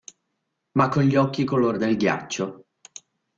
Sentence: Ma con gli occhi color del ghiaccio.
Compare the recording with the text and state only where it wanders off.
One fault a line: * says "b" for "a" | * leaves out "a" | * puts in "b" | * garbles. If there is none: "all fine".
all fine